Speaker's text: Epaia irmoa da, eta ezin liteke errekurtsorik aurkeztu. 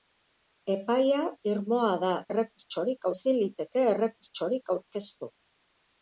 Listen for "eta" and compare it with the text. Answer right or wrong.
wrong